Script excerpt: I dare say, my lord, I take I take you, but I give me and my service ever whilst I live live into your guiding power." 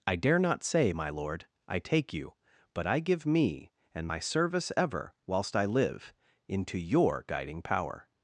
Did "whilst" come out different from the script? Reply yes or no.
no